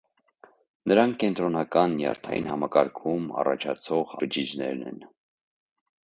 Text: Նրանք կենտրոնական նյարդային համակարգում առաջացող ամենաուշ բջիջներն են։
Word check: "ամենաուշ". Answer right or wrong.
wrong